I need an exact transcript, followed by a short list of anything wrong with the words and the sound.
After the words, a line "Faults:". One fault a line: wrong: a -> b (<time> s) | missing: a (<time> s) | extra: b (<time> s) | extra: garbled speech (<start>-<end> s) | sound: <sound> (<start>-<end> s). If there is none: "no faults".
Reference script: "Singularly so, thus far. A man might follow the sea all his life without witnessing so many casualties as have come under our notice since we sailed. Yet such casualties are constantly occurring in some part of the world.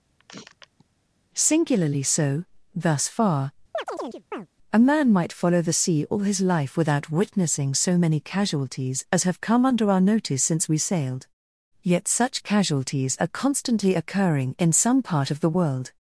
"Singularly so, thus far. A man might follow the sea all his life without witnessing so many casualties as have come under our notice since we sailed. Yet such casualties are constantly occurring in some part of the world.
Faults:
sound: sniff (0.2-0.8 s)
sound: chirp (3.7-4.5 s)